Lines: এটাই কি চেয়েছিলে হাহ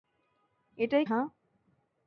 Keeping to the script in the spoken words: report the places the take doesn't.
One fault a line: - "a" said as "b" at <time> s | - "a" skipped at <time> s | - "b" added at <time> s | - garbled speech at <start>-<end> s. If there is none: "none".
- "কি চেয়েছিলে" skipped at 1.1 s